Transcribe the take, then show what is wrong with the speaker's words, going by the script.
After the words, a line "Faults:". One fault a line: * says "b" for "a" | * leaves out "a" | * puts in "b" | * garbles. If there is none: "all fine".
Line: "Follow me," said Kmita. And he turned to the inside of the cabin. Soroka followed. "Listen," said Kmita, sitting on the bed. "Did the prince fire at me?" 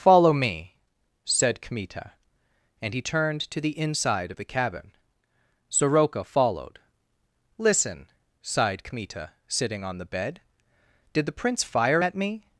"Follow me," said Kmita. And he turned to the inside of the cabin. Soroka followed. "Listen," sighed Kmita, sitting on the bed. "Did the prince fire at me?"
Faults:
* says "sighed" for "said"